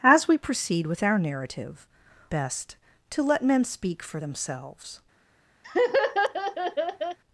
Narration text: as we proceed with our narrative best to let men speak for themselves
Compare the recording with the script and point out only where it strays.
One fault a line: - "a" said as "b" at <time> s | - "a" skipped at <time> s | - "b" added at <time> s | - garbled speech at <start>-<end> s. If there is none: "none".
none